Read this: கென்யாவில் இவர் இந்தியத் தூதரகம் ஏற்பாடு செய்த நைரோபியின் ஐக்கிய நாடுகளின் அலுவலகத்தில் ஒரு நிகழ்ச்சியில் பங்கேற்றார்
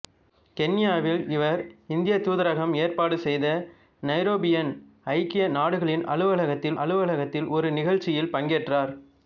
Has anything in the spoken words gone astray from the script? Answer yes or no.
yes